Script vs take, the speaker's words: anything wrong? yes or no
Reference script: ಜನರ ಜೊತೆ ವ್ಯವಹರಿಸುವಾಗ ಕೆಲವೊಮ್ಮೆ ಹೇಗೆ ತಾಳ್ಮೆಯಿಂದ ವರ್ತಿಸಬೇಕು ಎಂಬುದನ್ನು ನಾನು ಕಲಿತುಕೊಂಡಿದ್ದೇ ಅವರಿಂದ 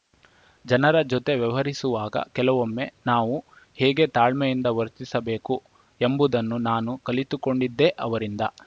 yes